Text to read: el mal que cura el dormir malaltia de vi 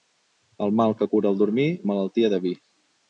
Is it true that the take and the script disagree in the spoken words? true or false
false